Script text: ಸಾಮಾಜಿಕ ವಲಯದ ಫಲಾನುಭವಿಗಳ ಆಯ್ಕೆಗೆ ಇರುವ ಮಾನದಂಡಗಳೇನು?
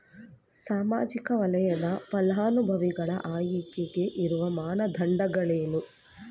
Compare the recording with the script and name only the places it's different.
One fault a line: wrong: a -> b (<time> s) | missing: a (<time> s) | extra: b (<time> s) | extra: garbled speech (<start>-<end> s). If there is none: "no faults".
no faults